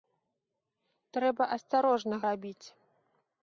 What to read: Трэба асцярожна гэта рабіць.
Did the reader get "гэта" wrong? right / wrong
wrong